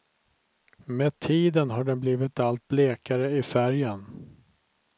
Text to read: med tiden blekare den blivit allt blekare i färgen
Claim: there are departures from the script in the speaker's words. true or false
true